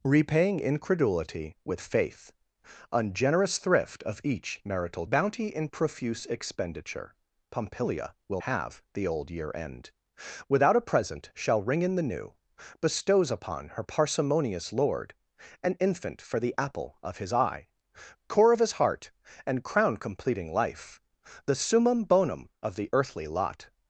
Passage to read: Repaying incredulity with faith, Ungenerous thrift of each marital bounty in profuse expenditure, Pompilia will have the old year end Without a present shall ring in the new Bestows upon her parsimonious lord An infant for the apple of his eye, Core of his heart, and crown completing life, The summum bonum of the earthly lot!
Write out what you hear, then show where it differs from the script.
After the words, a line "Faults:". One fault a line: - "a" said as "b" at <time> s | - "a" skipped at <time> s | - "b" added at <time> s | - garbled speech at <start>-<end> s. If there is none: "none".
Repaying incredulity with faith, Ungenerous thrift of each marital bounty in profuse expenditure, Pompilia will have the old year end Without a present shall ring in the new Bestows upon her parsimonious lord An infant for the apple of his eye, Core of his heart, and crown completing life, The summum bonum of the earthly lot!
Faults:
none